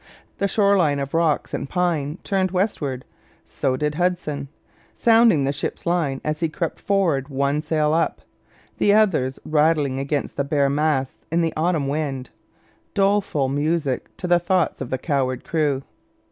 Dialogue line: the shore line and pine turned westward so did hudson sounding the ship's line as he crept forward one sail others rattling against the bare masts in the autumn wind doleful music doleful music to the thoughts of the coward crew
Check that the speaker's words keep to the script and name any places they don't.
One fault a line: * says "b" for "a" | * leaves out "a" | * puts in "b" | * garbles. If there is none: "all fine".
* puts in "of rocks"
* puts in "up the"
* leaves out "doleful music"